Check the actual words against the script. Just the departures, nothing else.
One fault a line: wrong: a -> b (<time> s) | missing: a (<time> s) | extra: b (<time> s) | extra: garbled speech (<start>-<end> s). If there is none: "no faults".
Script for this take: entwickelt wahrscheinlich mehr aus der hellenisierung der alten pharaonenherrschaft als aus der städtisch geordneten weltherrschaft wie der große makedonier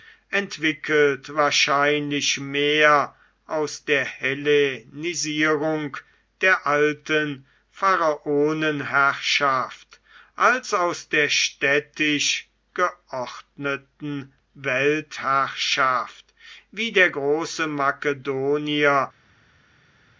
no faults